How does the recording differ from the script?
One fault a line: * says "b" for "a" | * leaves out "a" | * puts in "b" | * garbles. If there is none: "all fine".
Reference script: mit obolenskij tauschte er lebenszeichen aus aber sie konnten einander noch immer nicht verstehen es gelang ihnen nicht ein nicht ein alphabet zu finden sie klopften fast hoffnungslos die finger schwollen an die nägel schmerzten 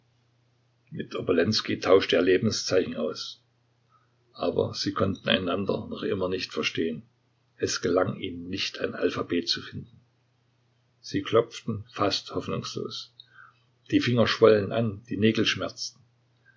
* leaves out "nicht ein"